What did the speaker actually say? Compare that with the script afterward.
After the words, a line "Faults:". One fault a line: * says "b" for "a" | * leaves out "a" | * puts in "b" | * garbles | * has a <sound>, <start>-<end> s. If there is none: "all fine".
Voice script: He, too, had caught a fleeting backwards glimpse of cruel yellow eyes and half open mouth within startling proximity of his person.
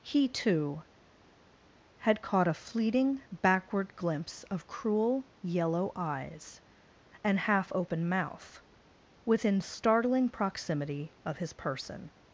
He, too, had caught a fleeting backward glimpse of cruel yellow eyes and half open mouth within startling proximity of his person.
Faults:
* says "backward" for "backwards"